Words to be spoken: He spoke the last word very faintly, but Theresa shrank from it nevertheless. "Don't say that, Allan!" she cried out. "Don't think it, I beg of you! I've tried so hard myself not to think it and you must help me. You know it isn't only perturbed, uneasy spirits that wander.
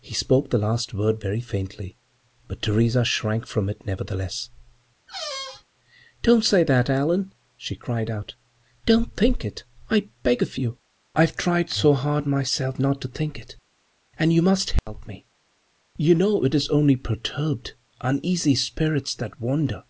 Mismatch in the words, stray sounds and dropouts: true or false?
true